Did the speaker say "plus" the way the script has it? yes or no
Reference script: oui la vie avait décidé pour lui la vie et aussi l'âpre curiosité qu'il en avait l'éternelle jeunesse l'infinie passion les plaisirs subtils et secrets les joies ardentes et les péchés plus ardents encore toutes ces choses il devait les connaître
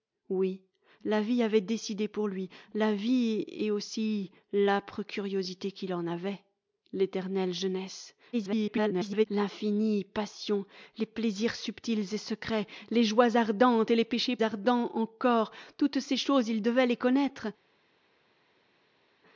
no